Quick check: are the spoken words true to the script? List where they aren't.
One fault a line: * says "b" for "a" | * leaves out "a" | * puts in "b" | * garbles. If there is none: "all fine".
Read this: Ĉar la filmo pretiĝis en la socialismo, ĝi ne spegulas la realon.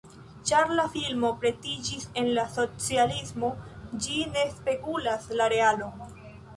all fine